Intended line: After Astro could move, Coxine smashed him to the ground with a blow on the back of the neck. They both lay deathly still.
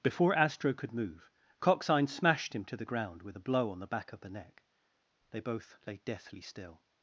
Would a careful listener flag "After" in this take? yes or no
yes